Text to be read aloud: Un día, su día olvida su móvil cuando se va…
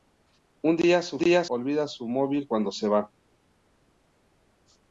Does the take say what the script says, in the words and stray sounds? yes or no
yes